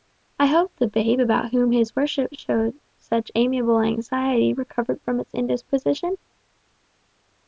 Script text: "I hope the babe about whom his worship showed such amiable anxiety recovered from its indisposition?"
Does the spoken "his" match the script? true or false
true